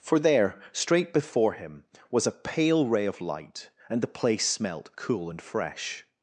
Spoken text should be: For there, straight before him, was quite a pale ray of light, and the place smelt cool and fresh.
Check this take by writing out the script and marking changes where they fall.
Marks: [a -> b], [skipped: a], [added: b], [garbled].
For there, straight before him, was [skipped: quite] a pale ray of light, and the place smelt cool and fresh.